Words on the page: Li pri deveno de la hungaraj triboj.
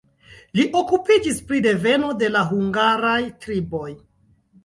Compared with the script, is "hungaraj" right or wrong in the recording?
right